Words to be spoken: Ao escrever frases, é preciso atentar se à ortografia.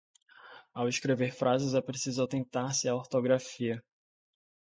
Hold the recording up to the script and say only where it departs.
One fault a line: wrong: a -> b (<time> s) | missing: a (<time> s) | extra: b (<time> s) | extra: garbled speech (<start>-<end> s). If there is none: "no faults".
no faults